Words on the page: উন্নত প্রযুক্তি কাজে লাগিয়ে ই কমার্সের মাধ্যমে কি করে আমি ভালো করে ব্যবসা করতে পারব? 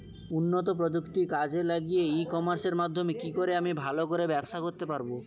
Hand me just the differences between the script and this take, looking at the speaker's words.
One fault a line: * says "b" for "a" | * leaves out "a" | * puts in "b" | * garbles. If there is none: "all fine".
all fine